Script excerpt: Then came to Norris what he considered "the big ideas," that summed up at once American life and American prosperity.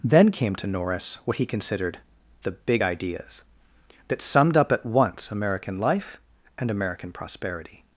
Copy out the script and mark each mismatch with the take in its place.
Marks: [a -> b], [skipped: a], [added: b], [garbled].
Then came to Norris what he considered "the big ideas," that summed up at once American life and American prosperity.